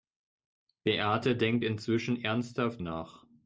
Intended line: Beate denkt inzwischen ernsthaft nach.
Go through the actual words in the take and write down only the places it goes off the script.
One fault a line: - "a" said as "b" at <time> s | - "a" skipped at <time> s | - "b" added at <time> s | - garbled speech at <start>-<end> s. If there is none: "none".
none